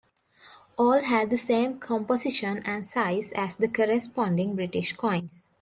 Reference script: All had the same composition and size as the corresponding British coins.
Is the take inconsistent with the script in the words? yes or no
no